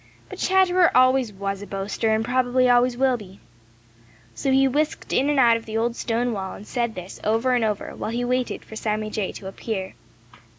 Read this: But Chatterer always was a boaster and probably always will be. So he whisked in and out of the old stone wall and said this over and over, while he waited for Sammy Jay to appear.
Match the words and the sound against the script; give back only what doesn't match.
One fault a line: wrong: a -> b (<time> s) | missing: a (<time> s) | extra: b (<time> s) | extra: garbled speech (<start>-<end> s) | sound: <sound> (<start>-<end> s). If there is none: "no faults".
no faults